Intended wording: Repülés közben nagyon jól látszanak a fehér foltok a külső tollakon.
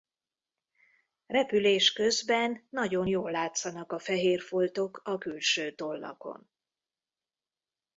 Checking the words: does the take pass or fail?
pass